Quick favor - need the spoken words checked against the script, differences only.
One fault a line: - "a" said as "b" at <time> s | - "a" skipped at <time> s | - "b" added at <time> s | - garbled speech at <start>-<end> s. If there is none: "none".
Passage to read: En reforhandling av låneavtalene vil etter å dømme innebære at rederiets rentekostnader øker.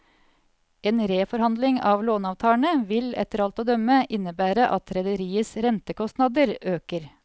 - "alt" added at 3.5 s